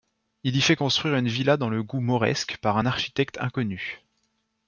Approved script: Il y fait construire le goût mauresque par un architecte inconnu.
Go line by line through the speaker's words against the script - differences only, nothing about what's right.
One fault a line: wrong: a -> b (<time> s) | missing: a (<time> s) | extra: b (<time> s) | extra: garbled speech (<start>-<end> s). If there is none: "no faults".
extra: une villa dans (1.1 s)